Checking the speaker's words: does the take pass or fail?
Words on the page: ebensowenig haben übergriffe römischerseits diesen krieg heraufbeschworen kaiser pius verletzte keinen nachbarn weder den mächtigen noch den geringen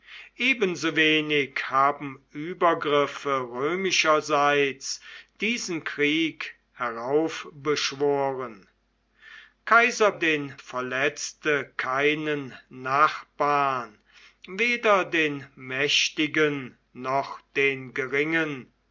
fail